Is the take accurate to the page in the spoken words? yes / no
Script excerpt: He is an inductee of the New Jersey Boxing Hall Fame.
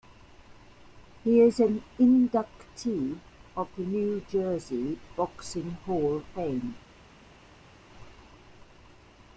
yes